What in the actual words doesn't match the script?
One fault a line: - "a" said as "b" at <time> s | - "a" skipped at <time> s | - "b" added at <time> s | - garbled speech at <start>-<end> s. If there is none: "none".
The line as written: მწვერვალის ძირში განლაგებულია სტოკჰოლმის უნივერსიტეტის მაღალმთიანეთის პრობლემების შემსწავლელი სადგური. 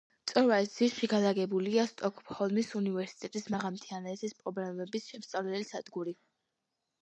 none